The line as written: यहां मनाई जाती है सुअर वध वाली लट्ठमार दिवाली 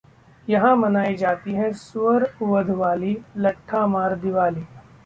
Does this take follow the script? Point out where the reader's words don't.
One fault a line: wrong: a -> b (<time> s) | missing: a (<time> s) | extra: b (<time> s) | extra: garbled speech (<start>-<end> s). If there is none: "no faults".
no faults